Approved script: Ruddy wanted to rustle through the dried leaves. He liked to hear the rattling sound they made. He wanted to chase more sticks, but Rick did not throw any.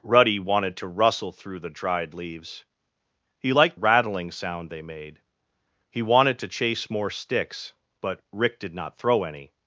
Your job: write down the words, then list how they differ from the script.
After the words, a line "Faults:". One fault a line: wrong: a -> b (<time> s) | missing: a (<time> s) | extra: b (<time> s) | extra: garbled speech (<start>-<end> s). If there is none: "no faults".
Ruddy wanted to rustle through the dried leaves. He liked rattling sound they made. He wanted to chase more sticks, but Rick did not throw any.
Faults:
missing: to hear the (3.8 s)